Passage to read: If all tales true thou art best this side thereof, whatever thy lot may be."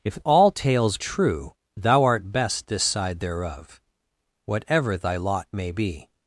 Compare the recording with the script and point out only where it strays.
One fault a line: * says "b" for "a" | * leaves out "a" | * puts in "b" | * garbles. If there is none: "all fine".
all fine